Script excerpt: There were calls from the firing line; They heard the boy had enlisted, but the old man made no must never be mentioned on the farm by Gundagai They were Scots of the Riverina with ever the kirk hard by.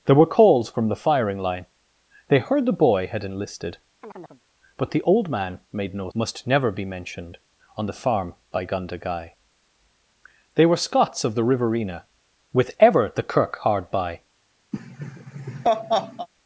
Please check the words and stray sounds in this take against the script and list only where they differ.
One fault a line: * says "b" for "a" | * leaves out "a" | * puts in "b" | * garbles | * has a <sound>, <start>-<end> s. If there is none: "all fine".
* has a chirp, 4.0-4.4 s
* has a laugh, 14.7-16.3 s